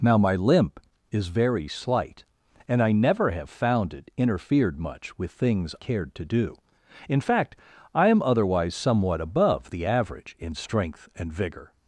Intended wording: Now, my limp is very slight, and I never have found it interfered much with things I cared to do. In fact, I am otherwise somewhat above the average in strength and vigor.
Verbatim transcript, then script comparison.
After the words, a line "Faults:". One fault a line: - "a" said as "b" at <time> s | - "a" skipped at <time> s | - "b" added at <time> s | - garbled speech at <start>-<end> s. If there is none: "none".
Now, my limp is very slight, and I never have found it interfered much with things cared to do. In fact, I am otherwise somewhat above the average in strength and vigor.
Faults:
- "I" skipped at 5.8 s